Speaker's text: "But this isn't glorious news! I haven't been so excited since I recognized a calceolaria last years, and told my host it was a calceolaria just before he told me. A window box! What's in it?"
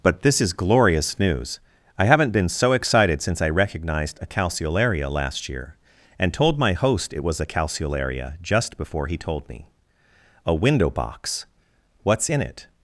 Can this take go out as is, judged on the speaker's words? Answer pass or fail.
fail